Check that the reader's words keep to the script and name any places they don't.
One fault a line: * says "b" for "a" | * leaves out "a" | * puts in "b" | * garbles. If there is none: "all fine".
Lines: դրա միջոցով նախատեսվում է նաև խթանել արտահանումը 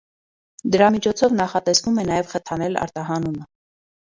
all fine